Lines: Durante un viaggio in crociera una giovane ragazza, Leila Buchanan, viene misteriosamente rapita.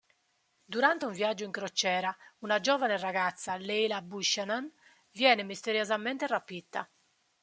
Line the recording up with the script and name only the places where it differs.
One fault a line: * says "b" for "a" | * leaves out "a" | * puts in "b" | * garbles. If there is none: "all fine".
all fine